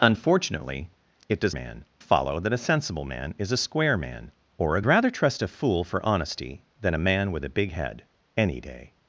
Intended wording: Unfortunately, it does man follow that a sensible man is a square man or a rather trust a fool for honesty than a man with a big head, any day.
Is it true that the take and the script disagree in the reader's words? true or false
false